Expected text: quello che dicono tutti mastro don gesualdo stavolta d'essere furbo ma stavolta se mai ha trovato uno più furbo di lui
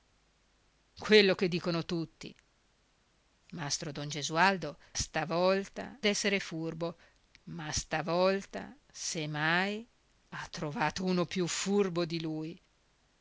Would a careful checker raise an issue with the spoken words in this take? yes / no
no